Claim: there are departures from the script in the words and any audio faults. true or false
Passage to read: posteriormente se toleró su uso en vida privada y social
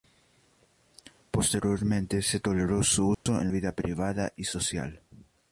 true